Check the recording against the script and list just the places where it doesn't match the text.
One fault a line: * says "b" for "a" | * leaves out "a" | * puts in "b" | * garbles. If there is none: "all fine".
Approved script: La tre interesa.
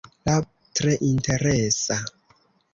all fine